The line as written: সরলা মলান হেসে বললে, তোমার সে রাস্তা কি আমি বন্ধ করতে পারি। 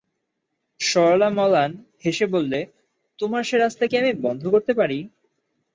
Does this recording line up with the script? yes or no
yes